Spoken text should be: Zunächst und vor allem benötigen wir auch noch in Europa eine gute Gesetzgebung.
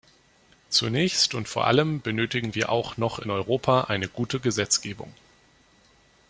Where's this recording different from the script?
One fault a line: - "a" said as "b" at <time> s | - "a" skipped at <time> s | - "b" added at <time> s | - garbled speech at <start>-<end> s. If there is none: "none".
none